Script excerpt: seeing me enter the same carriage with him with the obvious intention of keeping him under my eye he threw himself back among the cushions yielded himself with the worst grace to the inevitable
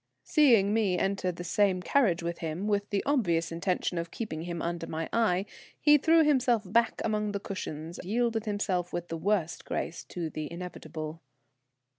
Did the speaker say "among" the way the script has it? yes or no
yes